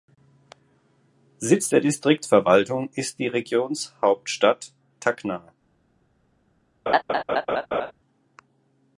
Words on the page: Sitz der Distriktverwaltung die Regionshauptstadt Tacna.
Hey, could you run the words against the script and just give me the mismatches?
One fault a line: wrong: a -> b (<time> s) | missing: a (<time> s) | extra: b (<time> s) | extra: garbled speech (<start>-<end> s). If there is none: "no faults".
extra: ist (3.0 s)